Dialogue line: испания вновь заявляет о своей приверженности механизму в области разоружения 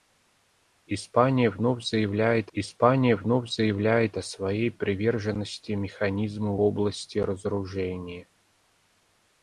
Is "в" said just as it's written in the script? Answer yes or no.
no